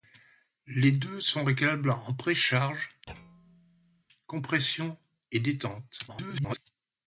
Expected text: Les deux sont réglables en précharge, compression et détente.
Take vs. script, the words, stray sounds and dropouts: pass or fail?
fail